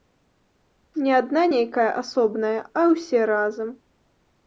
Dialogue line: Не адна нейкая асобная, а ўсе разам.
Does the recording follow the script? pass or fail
pass